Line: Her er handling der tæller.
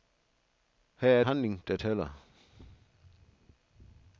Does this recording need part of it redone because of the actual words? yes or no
no